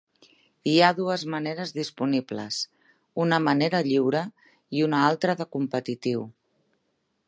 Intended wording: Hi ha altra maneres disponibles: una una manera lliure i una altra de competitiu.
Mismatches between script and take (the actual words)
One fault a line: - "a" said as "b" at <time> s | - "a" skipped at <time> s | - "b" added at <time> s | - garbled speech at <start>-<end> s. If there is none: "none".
- "altra" said as "dues" at 1.0 s
- "una" skipped at 3.4 s